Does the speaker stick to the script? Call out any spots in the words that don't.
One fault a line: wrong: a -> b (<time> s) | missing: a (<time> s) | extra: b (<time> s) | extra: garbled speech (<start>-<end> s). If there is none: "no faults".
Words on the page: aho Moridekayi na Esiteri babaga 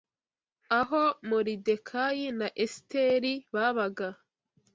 no faults